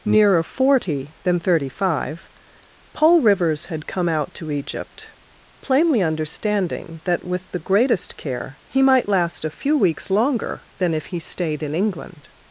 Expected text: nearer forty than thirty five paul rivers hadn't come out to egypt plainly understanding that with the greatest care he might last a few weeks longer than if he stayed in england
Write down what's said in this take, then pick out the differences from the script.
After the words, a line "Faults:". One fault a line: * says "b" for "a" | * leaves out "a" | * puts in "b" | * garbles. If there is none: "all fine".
nearer forty than thirty five paul rivers had come out to egypt plainly understanding that with the greatest care he might last a few weeks longer than if he stayed in england
Faults:
* says "had" for "hadn't"